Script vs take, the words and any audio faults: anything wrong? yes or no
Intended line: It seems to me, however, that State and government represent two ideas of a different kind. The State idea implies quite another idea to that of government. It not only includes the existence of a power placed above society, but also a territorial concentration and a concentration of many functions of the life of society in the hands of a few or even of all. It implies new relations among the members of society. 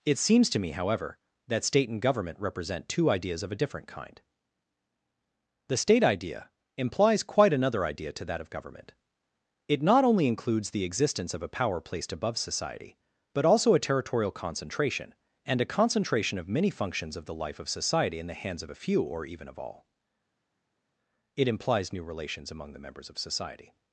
no